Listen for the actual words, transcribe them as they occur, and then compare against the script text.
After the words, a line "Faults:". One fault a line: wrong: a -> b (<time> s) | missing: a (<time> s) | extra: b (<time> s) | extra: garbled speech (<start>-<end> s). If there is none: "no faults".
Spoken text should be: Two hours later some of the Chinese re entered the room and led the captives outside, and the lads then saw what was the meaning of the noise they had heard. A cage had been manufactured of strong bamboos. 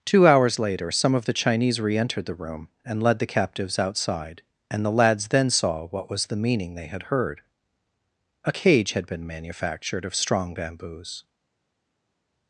Two hours later some of the Chinese re entered the room and led the captives outside, and the lads then saw what was the meaning they had heard. A cage had been manufactured of strong bamboos.
Faults:
missing: of the noise (6.7 s)